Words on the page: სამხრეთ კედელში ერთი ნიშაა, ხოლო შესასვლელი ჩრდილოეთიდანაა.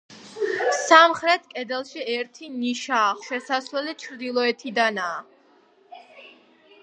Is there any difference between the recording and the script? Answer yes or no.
yes